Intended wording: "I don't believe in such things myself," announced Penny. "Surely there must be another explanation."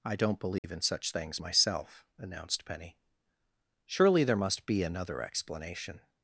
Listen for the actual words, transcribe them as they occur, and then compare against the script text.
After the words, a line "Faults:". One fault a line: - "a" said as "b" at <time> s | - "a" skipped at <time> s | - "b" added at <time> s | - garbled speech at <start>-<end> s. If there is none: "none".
"I don't believe in such things myself," announced Penny. "Surely there must be another explanation."
Faults:
none